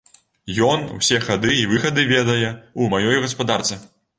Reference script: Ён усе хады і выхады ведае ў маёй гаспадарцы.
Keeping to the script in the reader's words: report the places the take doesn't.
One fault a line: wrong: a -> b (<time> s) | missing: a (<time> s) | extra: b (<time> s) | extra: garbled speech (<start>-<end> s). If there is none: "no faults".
no faults